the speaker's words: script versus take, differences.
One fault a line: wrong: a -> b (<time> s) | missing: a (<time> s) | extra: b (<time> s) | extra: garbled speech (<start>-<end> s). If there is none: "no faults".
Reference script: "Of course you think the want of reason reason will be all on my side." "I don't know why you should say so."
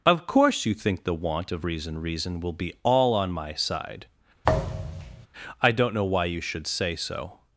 no faults